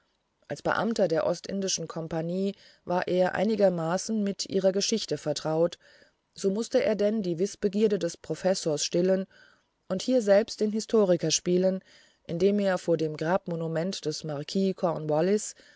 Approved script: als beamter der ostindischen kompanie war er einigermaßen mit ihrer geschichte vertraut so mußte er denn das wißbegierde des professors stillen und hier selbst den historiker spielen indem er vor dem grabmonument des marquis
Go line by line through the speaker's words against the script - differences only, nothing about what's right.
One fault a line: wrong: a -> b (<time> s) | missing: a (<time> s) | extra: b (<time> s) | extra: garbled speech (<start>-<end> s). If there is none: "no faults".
wrong: das -> die (7.2 s)